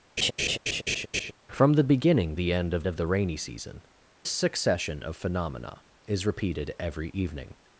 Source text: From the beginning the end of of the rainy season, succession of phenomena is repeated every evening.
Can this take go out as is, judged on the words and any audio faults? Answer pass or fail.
fail